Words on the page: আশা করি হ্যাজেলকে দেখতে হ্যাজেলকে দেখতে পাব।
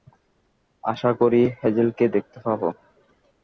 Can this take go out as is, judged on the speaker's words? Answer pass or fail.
fail